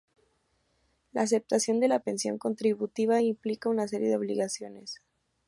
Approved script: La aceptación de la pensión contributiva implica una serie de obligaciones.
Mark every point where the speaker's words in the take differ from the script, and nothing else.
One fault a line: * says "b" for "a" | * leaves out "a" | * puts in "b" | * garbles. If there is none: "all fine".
all fine